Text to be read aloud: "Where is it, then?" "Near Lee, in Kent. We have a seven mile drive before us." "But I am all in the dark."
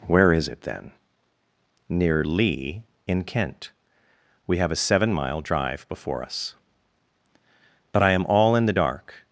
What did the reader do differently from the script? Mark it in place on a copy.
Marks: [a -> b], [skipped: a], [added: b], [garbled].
"Where is it, then?" "Near Lee, in Kent. We have a seven mile drive before us." "But I am all in the dark."